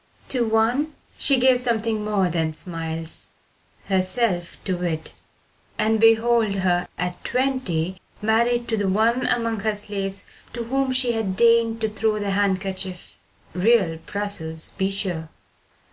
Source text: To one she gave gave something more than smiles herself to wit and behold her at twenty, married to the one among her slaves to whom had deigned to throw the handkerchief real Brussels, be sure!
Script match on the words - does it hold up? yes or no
no